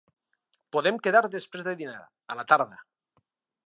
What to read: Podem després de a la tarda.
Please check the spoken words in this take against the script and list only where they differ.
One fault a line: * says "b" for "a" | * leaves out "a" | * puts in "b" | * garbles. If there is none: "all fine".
* puts in "quedar"
* puts in "dinar"